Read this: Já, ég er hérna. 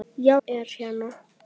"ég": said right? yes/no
no